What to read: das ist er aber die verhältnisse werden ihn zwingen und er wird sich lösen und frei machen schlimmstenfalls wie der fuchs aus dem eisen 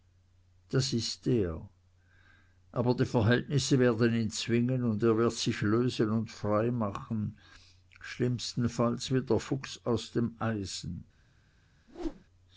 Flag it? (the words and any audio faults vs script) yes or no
yes